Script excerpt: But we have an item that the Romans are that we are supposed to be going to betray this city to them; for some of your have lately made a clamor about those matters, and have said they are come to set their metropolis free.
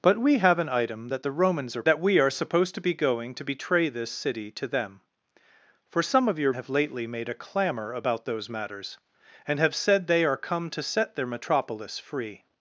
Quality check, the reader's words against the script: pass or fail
pass